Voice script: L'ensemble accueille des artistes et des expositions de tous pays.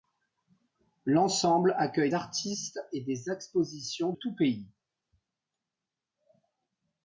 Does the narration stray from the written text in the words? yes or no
yes